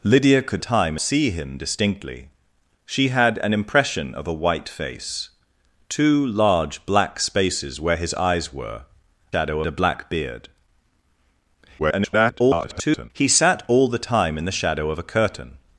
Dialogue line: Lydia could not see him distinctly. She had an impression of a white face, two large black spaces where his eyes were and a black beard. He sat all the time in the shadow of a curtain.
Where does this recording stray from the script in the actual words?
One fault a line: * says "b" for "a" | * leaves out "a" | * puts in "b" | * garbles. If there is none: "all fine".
* says "time" for "not"
* says "shadow" for "and"
* garbles